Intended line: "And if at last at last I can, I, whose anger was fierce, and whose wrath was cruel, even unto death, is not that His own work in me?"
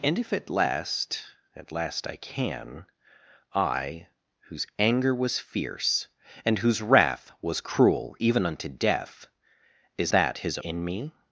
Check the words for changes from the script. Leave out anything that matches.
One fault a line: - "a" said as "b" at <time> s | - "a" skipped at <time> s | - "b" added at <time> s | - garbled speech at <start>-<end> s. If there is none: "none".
- "not" skipped at 10.1 s
- "own work" skipped at 10.6 s